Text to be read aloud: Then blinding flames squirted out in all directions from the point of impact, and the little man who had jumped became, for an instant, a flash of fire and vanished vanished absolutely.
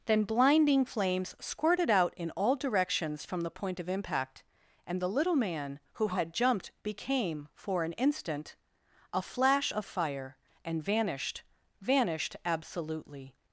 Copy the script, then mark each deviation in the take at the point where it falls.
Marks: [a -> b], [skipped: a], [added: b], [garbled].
Then blinding flames squirted out in all directions from the point of impact, and the little man who had jumped became, for an instant, a flash of fire and vanished vanished absolutely.